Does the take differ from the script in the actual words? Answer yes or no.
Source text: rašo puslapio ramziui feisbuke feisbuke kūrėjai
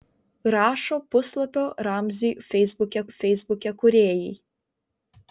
no